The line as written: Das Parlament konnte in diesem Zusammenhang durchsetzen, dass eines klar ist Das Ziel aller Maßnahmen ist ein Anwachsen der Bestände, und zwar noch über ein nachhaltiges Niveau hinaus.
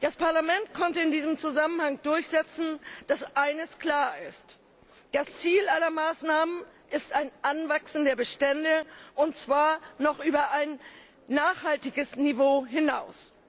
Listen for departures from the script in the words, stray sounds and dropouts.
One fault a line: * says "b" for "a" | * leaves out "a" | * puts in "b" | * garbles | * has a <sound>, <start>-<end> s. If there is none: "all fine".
all fine